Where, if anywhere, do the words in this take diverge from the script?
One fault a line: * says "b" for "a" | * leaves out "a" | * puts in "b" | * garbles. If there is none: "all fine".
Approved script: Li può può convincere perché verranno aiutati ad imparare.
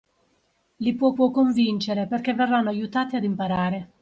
all fine